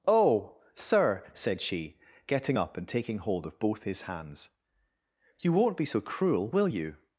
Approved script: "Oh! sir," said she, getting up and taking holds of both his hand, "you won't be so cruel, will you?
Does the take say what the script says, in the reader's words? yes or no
no